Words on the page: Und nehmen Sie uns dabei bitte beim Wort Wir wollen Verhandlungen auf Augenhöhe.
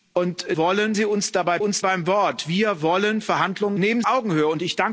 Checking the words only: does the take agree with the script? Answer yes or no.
no